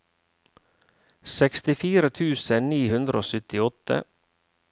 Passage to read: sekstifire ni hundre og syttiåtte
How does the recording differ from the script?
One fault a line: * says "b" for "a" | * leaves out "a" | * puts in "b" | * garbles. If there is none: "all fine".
* puts in "tusen"